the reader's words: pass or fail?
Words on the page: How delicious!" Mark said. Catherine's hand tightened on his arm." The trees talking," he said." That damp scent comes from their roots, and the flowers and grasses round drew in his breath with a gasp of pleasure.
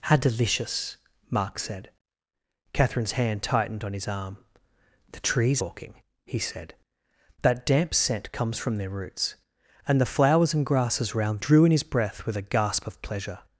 pass